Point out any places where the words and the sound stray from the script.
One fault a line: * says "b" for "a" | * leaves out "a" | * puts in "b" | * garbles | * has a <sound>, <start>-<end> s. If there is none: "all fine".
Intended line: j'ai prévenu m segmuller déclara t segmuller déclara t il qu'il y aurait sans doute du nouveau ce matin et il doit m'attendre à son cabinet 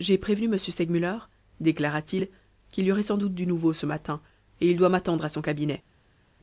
* leaves out "segmuller déclara t"